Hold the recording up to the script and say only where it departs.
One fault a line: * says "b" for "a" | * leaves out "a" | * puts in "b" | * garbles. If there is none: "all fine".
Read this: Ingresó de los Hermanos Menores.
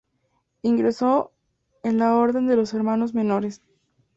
* puts in "en la Orden"